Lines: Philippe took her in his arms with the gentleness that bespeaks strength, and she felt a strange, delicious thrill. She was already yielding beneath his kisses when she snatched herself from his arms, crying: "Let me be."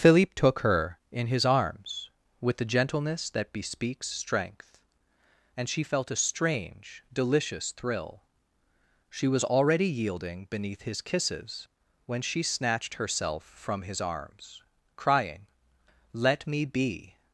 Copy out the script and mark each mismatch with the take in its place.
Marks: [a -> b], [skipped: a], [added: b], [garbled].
Philippe took her in his arms with the gentleness that bespeaks strength, and she felt a strange, delicious thrill. She was already yielding beneath his kisses when she snatched herself from his arms, crying: "Let me be."